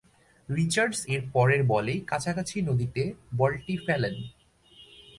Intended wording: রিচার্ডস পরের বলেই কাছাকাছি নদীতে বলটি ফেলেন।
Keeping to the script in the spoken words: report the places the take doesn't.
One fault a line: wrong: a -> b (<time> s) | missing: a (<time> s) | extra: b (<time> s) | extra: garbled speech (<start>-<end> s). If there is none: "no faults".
extra: এর (1.1 s)